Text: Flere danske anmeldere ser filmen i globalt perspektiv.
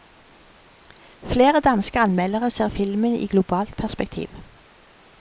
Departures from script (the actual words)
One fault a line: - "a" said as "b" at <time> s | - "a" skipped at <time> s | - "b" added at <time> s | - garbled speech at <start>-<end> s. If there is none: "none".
none